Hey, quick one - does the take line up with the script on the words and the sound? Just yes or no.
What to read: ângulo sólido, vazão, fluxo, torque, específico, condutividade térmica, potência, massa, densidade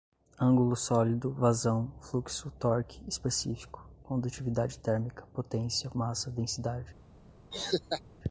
no